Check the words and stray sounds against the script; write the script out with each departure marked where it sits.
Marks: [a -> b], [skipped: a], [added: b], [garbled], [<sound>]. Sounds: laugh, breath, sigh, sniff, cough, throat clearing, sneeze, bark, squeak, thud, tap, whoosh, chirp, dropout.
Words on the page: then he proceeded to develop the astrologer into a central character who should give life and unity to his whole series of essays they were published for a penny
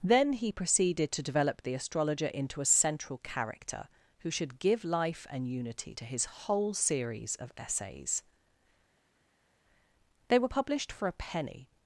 then he proceeded to develop the astrologer into a central character who should give life and unity to his whole series of essays they were published for a penny